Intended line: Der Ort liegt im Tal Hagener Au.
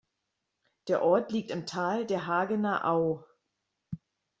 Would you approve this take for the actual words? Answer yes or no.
no